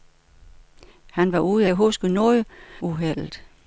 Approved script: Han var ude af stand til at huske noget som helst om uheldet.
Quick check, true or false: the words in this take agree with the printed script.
false